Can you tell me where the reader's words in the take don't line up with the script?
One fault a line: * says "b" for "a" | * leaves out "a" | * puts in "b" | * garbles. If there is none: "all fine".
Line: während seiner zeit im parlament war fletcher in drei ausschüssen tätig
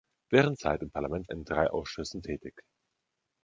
* leaves out "seiner"
* leaves out "war fletcher"